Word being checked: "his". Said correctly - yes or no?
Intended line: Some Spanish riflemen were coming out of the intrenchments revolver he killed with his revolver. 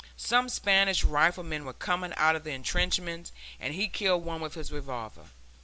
yes